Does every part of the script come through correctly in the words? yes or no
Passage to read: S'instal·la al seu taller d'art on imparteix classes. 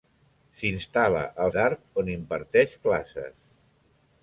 no